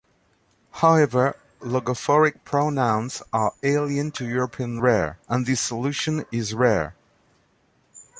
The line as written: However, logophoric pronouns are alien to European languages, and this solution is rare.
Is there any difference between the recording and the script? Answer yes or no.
yes